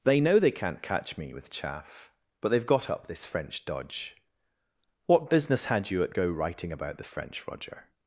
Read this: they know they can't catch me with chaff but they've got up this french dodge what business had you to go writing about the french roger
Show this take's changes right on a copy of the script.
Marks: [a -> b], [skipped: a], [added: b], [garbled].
they know they can't catch me with chaff but they've got up this french dodge what business had you [to -> at] go writing about the french roger